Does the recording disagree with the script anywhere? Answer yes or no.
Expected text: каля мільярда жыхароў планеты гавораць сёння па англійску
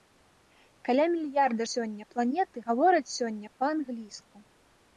yes